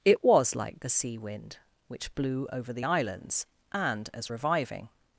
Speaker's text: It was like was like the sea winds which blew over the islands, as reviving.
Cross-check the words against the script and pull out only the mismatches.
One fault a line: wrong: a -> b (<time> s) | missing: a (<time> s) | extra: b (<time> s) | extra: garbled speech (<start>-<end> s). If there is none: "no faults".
missing: was like (0.8 s)
wrong: winds -> wind (1.1 s)
extra: and (3.7 s)